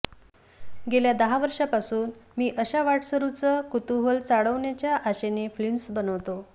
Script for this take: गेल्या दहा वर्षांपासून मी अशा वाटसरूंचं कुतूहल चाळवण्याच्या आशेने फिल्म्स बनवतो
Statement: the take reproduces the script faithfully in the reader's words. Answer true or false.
true